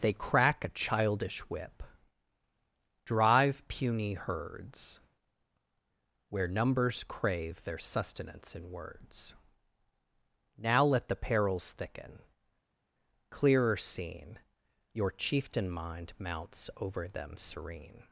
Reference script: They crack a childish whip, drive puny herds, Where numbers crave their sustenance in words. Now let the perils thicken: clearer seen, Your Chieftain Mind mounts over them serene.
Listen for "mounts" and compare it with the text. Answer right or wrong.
right